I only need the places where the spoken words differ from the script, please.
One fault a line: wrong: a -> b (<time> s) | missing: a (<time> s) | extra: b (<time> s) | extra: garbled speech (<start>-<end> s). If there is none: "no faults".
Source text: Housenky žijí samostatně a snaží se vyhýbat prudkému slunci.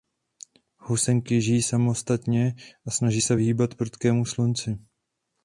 no faults